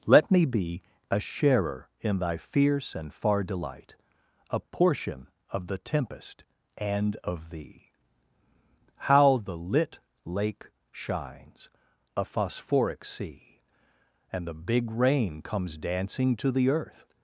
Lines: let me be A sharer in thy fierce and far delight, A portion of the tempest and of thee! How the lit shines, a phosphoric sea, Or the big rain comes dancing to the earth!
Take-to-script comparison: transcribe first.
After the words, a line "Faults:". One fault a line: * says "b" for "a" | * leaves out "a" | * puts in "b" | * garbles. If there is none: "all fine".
let me be A sharer in thy fierce and far delight, A portion of the tempest and of thee! How the lit lake shines, a phosphoric sea, And the big rain comes dancing to the earth!
Faults:
* puts in "lake"
* says "And" for "Or"